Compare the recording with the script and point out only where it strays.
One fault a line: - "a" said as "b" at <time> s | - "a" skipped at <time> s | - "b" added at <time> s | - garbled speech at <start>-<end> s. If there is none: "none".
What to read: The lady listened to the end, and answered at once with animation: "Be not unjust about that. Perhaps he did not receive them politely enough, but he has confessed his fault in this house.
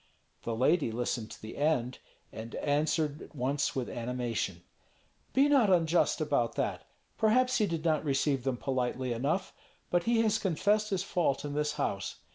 none